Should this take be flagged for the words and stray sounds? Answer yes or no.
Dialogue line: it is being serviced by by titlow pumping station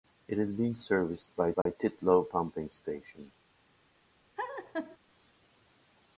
yes